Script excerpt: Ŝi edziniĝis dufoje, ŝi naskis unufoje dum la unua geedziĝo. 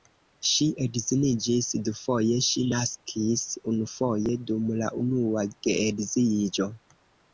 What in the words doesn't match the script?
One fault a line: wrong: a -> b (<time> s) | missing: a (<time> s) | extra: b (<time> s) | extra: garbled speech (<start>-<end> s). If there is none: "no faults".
no faults